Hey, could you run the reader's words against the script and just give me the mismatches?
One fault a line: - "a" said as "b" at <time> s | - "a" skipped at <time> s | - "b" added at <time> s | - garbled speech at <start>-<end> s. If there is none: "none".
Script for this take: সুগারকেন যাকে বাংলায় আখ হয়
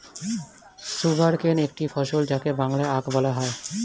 - "একটি ফসল" added at 1.7 s
- "বলা" added at 3.2 s